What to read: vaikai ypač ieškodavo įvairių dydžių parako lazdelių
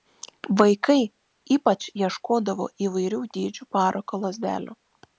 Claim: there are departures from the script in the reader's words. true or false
false